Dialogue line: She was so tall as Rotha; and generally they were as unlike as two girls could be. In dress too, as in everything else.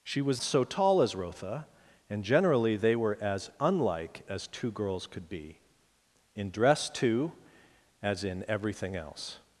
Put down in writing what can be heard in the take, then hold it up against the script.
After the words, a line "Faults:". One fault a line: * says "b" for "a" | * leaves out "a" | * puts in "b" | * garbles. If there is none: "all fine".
She was so tall as Rotha; and generally they were as unlike as two girls could be. In dress too, as in everything else.
Faults:
all fine